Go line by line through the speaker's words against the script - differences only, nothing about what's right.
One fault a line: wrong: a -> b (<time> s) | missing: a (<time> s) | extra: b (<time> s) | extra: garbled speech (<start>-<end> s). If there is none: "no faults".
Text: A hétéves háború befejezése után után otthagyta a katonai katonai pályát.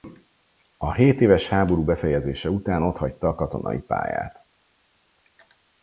missing: után (2.8 s)
missing: katonai (3.8 s)